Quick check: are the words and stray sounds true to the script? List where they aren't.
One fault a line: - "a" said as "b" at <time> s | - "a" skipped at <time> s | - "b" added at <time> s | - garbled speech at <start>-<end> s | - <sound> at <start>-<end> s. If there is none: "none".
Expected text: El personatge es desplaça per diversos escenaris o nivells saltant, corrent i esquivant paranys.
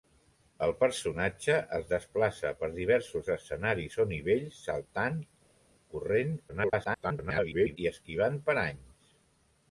- garbled speech at 6.5-7.8 s